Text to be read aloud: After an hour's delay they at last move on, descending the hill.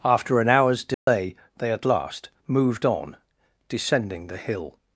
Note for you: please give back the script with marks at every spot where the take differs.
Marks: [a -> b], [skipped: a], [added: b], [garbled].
After an hour's delay they at last [move -> moved] on, descending the hill.